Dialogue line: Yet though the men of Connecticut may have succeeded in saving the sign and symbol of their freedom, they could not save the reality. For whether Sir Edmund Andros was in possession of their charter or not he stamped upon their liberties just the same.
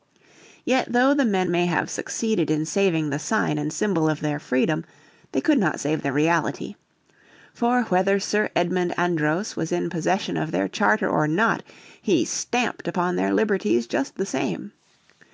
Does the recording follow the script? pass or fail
fail